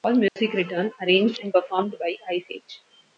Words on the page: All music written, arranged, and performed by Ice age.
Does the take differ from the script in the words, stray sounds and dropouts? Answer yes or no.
yes